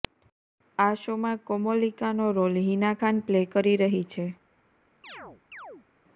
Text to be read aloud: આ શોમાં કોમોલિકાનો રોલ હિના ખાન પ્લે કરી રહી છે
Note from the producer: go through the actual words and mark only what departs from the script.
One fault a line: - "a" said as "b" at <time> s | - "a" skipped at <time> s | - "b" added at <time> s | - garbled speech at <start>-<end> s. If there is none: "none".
none